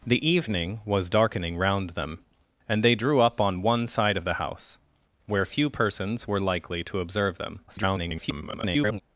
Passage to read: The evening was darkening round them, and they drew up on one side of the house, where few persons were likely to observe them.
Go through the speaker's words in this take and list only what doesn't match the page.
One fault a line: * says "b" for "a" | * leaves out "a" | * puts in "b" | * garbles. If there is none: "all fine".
* garbles